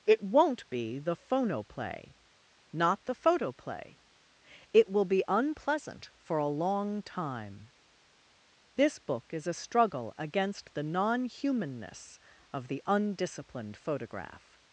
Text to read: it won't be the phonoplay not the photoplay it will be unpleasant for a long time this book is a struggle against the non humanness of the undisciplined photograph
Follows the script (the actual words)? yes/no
yes